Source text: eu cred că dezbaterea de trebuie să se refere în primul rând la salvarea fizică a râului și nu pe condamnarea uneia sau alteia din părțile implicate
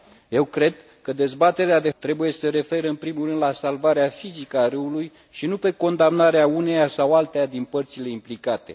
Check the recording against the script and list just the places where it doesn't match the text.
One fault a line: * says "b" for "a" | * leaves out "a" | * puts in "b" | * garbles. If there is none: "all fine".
all fine